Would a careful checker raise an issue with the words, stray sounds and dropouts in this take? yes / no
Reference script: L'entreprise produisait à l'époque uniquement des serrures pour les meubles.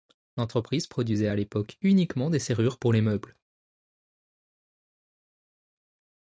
no